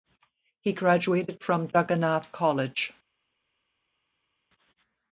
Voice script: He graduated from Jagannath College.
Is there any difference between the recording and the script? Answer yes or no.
no